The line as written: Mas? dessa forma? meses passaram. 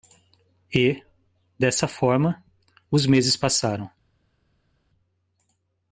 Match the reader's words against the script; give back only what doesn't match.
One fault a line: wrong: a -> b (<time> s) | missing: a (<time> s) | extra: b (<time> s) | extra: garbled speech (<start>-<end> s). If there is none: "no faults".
wrong: Mas -> E (0.7 s)
extra: os (2.9 s)